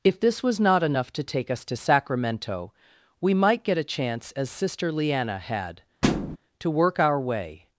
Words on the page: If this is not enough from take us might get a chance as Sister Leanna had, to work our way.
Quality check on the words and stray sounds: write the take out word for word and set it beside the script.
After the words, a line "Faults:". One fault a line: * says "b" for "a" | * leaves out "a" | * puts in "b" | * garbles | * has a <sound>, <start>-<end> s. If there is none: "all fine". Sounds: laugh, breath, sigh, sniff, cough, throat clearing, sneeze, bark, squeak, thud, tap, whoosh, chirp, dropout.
If this was not enough to take us to Sacramento, we might get a chance as Sister Leanna had, to work our way.
Faults:
* says "was" for "is"
* says "to" for "from"
* puts in "to Sacramento we"
* has a thud, 6.0-6.4 s